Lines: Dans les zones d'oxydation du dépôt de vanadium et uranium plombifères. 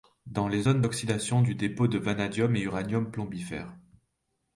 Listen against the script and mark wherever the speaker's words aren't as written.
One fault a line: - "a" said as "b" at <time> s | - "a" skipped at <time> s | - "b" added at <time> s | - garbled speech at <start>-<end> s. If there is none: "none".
none